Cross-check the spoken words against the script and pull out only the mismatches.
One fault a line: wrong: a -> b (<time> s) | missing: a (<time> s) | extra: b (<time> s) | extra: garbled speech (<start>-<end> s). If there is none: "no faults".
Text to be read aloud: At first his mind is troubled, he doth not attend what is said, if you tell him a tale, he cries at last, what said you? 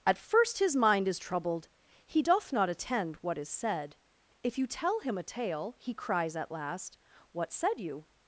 no faults